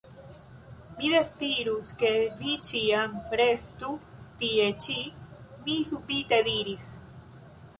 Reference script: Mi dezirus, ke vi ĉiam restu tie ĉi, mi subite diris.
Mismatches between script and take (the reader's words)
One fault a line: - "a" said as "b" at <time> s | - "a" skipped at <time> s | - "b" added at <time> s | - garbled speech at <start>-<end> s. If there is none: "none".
none